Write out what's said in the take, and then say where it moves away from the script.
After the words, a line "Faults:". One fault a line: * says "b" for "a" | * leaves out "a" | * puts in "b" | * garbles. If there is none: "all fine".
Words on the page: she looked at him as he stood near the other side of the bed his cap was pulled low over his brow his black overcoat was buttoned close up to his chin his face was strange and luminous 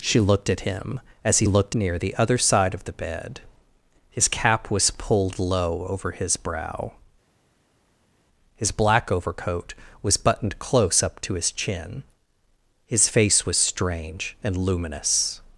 she looked at him as he looked near the other side of the bed his cap was pulled low over his brow his black overcoat was buttoned close up to his chin his face was strange and luminous
Faults:
* says "looked" for "stood"